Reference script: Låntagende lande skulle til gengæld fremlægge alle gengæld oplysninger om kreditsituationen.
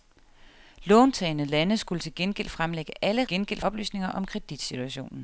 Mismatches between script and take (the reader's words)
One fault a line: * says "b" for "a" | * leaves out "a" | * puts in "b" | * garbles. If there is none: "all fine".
all fine